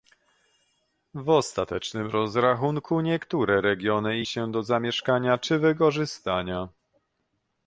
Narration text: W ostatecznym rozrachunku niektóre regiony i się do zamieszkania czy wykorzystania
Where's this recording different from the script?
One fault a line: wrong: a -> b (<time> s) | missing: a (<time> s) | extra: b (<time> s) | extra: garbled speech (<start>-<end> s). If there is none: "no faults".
no faults